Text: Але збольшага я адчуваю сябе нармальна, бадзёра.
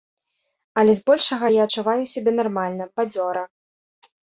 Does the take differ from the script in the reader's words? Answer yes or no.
no